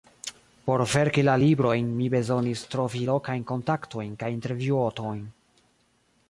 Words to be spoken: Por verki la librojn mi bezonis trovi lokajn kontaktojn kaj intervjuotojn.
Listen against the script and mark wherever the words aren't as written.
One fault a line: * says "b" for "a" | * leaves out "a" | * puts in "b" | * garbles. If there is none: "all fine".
all fine